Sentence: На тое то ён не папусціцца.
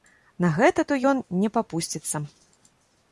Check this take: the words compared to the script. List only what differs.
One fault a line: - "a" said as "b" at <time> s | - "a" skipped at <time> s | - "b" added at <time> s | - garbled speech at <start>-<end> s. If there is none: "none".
- "тое" said as "гэта" at 0.6 s